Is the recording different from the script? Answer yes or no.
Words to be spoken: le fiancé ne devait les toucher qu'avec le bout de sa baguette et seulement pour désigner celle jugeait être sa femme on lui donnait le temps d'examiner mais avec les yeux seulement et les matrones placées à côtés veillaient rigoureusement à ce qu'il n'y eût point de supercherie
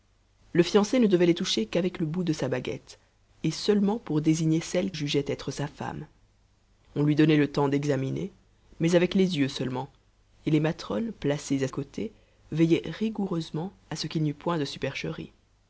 no